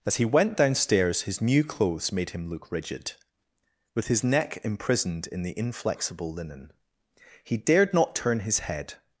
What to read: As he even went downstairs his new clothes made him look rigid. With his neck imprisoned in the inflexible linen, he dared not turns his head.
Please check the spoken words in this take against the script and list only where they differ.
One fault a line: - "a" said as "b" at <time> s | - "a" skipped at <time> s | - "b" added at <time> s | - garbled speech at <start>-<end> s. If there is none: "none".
- "even" skipped at 0.2 s
- "turns" said as "turn" at 8.2 s